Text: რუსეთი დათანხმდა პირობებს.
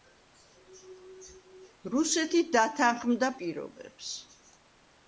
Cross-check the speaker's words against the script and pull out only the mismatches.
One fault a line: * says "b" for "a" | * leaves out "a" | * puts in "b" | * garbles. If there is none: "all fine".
all fine